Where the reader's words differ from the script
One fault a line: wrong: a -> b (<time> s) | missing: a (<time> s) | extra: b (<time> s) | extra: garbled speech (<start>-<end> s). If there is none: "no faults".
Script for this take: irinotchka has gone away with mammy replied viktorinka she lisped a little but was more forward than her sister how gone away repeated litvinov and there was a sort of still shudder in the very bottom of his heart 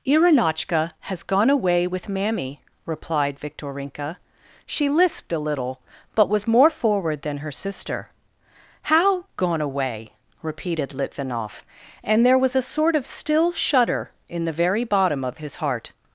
no faults